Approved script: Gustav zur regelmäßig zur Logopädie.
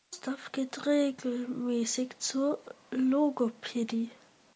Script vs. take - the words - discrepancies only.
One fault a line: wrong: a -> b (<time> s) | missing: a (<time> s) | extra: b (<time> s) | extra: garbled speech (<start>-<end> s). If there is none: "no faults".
wrong: zur -> geht (0.5 s)